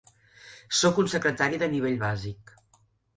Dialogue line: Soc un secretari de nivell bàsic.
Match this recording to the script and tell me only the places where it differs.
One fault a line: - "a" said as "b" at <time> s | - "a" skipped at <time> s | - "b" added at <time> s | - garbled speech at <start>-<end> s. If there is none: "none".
none